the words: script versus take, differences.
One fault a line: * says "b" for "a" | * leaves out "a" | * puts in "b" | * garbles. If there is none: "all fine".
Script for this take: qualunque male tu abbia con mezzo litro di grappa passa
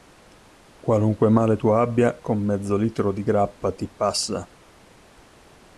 * puts in "ti"